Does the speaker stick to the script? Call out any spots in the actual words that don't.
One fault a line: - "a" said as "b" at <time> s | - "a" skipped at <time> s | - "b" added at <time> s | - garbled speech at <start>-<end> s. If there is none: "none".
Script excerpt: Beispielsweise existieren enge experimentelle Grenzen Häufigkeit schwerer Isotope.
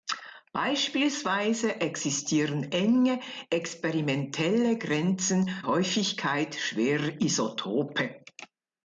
none